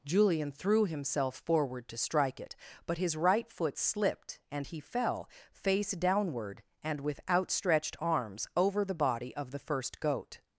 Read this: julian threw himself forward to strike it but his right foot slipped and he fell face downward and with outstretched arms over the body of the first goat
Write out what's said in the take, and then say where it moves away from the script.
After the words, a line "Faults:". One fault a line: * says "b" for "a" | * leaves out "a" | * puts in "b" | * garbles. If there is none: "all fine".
julian threw himself forward to strike it but his right foot slipped and he fell face downward and with outstretched arms over the body of the first goat
Faults:
all fine